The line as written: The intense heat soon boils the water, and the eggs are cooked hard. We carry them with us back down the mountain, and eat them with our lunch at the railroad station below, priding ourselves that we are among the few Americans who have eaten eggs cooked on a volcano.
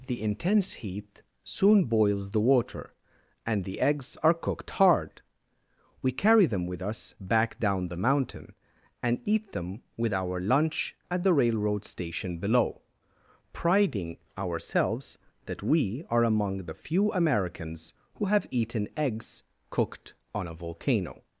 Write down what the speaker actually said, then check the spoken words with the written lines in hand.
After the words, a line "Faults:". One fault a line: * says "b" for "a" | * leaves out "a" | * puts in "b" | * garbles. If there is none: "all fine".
The intense heat soon boils the water, and the eggs are cooked hard. We carry them with us back down the mountain, and eat them with our lunch at the railroad station below, priding ourselves that we are among the few Americans who have eaten eggs cooked on a volcano.
Faults:
all fine